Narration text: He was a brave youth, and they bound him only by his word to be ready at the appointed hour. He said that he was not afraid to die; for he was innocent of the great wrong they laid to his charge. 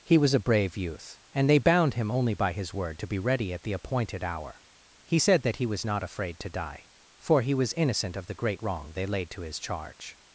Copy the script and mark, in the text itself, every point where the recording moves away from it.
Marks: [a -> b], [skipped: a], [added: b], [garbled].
He was a brave youth, and they bound him only by his word to be ready at the appointed hour. He said that he was not afraid to die; for he was innocent of the great wrong they laid to his charge.